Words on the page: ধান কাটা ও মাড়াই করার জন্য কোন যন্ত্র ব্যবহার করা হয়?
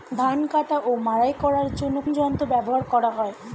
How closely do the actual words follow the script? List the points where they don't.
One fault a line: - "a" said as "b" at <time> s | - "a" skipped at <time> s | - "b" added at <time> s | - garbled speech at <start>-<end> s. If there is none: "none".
- "কোন" skipped at 2.0 s